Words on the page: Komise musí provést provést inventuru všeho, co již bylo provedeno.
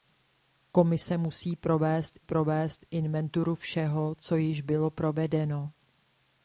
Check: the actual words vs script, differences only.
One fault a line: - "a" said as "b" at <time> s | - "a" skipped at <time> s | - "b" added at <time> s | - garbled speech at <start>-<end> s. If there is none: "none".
none